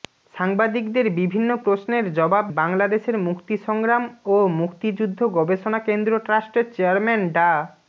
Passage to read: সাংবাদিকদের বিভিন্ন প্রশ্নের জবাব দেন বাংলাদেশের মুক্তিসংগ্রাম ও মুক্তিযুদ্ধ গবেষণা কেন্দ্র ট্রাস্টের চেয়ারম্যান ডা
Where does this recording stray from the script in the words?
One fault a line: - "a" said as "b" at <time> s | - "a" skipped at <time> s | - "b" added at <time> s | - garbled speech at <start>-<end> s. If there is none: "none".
- "দেন" skipped at 2.5 s